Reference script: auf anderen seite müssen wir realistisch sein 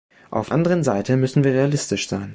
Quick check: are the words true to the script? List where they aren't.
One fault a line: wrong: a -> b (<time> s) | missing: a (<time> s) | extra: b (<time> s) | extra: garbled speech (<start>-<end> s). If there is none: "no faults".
no faults